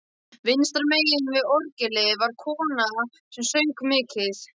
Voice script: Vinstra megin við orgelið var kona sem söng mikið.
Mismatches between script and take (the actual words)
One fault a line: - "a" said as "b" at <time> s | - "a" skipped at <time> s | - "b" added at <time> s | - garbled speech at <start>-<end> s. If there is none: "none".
none